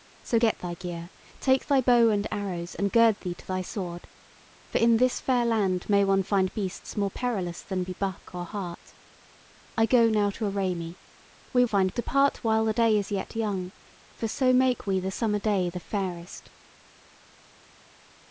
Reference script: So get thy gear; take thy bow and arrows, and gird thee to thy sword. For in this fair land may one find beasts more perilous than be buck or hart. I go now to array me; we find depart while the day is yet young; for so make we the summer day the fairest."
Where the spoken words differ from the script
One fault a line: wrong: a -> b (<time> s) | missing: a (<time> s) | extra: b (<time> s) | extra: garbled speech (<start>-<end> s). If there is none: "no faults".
no faults